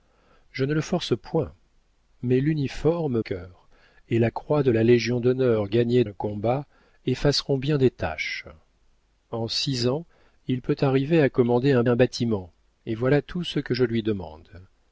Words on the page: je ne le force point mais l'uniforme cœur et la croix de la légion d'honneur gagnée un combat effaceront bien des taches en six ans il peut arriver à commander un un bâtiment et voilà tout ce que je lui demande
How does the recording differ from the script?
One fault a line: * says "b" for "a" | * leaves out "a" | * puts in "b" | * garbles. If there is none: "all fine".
all fine